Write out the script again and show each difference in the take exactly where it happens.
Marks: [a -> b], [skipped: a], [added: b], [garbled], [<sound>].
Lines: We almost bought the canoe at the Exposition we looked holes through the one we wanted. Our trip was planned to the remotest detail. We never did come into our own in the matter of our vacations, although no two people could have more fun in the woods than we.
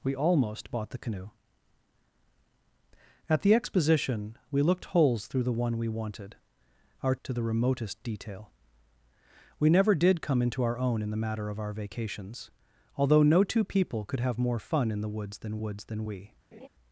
We almost bought the canoe at the Exposition we looked holes through the one we wanted. Our [skipped: trip was planned] to the remotest detail. We never did come into our own in the matter of our vacations, although no two people could have more fun in the woods than [added: woods than] we. [laugh]